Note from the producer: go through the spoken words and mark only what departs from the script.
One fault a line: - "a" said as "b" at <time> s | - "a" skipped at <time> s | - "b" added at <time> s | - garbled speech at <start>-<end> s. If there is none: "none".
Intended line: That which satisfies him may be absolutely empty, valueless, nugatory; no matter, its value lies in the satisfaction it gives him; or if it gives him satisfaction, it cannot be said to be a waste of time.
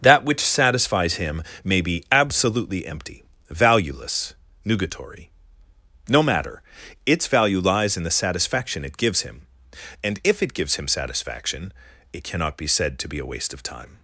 - "or" said as "and" at 10.0 s